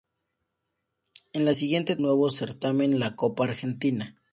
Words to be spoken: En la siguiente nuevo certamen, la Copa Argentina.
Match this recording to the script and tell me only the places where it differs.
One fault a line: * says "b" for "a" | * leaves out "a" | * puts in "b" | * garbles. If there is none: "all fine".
all fine